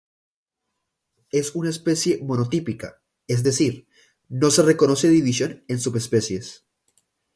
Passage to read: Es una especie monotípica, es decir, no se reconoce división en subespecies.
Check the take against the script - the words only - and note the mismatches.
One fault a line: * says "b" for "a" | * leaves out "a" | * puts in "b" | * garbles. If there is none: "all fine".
all fine